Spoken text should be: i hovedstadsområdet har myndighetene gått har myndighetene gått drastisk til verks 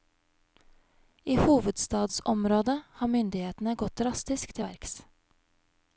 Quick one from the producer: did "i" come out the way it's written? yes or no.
yes